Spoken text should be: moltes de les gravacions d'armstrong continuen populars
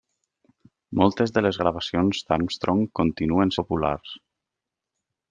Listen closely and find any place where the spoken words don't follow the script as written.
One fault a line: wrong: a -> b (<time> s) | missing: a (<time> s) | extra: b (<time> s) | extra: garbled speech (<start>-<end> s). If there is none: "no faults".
no faults